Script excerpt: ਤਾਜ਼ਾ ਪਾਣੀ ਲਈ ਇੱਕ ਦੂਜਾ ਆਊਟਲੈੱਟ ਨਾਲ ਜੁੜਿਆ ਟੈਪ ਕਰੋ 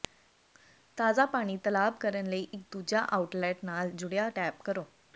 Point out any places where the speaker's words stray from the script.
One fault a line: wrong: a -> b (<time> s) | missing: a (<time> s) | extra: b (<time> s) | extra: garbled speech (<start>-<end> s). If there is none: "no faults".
extra: ਤਲਾਬ ਕਰਨ (1.6 s)